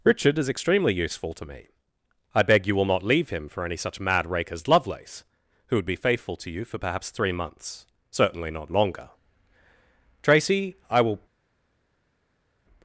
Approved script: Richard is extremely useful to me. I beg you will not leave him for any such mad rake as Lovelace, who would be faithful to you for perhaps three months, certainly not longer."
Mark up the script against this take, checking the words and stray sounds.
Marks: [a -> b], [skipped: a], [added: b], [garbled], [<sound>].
Richard is extremely useful to me. I beg you will not leave him for any such mad rake as Lovelace, who would be faithful to you for perhaps three months, certainly not longer." [added: Tracy I will]